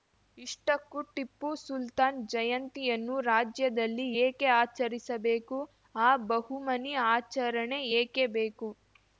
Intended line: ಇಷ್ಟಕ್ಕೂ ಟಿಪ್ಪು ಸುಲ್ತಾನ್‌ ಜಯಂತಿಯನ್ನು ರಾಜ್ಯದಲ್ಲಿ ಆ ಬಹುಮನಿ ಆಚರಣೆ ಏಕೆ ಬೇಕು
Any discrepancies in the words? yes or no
yes